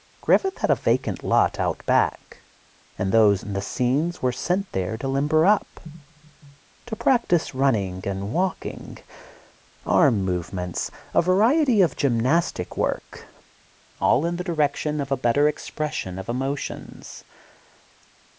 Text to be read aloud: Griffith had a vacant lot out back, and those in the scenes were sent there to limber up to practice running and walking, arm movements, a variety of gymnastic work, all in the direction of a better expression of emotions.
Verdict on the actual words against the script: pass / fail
pass